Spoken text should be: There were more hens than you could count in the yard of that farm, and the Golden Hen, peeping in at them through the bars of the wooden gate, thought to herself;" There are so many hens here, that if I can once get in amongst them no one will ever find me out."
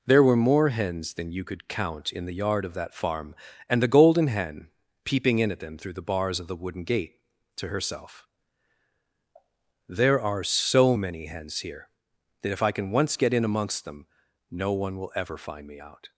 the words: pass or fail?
fail